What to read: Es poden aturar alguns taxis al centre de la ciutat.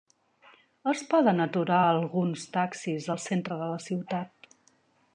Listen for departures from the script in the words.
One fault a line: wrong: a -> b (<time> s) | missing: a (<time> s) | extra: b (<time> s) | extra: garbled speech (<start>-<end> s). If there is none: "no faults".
no faults